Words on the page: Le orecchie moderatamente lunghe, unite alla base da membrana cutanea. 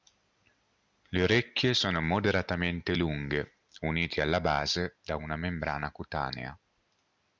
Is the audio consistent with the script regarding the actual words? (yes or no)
no